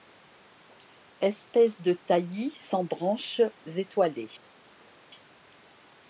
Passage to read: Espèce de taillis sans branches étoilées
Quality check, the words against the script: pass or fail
pass